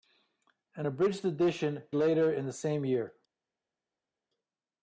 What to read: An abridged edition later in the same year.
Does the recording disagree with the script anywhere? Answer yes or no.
no